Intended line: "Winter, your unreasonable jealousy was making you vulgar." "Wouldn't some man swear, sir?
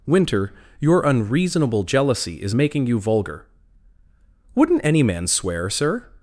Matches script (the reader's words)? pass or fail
fail